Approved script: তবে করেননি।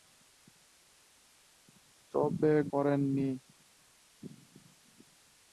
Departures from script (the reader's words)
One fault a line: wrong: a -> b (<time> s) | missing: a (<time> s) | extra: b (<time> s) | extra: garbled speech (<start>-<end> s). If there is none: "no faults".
no faults